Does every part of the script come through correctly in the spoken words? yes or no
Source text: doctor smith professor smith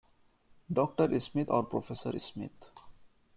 no